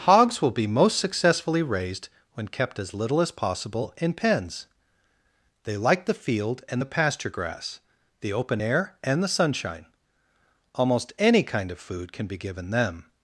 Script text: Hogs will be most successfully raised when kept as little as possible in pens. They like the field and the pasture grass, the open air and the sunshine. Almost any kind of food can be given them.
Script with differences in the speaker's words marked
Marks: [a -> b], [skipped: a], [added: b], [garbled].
Hogs will be most successfully raised when kept as little as possible in pens. They like the field and the pasture grass, the open air and the sunshine. Almost any kind of food can be given them.